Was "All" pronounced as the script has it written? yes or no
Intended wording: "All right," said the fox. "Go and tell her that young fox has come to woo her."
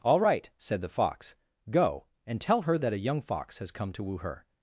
yes